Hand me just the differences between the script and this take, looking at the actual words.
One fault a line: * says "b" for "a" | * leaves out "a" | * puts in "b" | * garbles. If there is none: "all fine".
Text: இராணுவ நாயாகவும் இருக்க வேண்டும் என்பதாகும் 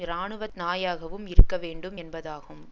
all fine